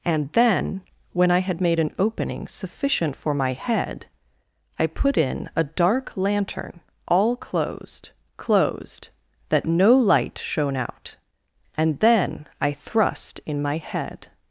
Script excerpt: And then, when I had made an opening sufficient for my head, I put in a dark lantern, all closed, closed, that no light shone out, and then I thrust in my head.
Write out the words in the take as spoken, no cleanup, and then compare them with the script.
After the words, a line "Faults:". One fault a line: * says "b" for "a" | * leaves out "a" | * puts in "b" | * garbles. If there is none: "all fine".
And then, when I had made an opening sufficient for my head, I put in a dark lantern, all closed, closed, that no light shone out, and then I thrust in my head.
Faults:
all fine